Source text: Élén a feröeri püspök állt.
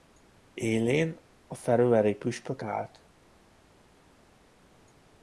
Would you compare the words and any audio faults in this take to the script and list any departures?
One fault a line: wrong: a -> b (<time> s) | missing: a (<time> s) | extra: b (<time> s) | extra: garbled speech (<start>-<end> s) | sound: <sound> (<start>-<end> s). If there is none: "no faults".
no faults